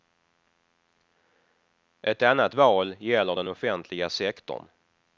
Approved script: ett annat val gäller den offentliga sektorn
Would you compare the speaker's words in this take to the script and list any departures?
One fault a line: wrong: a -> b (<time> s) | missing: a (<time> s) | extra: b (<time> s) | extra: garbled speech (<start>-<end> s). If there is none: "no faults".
no faults